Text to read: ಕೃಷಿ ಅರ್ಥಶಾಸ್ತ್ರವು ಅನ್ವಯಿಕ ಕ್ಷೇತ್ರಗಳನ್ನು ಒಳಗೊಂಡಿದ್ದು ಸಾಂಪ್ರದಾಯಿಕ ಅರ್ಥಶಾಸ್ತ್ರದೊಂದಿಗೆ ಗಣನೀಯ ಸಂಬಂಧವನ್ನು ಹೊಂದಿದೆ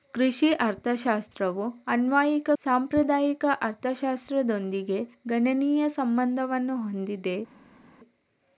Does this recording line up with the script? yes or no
no